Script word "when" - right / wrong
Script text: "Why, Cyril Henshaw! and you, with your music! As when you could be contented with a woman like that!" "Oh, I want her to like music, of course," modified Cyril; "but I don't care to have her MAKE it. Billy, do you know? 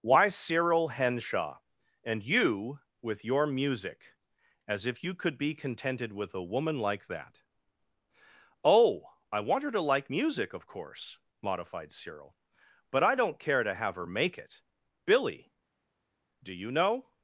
wrong